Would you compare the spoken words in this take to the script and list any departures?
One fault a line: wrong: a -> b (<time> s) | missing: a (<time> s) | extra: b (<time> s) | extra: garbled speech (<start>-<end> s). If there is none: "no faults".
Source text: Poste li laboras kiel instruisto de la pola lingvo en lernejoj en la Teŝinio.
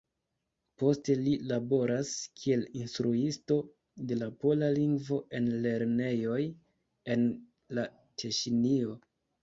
no faults